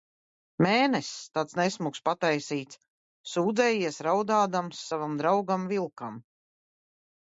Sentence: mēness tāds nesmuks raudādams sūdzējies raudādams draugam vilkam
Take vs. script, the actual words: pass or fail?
fail